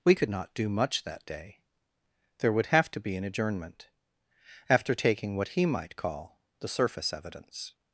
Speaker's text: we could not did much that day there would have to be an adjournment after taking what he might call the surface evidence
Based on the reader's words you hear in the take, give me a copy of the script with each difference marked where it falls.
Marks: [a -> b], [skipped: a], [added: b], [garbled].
we could not [did -> do] much that day there would have to be an adjournment after taking what he might call the surface evidence